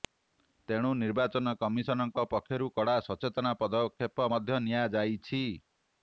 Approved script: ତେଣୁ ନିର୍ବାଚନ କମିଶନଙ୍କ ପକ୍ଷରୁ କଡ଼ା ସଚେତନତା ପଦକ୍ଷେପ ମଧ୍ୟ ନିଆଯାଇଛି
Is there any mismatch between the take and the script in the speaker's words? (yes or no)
no